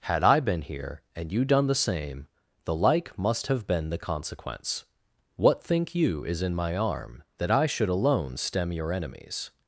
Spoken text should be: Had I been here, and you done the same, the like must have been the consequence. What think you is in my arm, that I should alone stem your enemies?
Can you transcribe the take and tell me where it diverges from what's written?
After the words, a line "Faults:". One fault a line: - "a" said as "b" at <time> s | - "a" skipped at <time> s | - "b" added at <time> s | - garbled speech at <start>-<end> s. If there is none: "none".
Had I been here, and you done the same, the like must have been the consequence. What think you is in my arm, that I should alone stem your enemies?
Faults:
none